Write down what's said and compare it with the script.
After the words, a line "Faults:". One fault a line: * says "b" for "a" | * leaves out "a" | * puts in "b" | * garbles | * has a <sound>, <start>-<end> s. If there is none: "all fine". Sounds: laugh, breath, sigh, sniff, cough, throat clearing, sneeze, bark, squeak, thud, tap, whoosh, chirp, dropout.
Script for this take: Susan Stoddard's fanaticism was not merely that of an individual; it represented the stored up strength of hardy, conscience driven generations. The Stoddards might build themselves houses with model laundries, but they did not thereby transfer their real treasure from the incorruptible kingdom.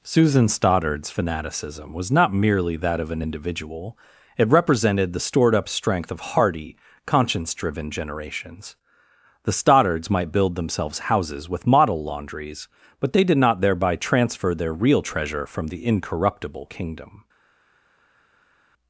Susan Stoddard's fanaticism was not merely that of an individual; it represented the stored up strength of hardy, conscience driven generations. The Stoddards might build themselves houses with model laundries, but they did not thereby transfer their real treasure from the incorruptible kingdom.
Faults:
all fine